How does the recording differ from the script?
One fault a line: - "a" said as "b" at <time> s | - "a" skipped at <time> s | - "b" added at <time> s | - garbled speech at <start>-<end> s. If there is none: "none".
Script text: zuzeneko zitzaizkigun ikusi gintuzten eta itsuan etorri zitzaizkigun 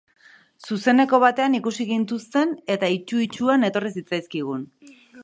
- "zitzaizkigun" said as "batean" at 1.2 s
- "itsu" added at 3.0 s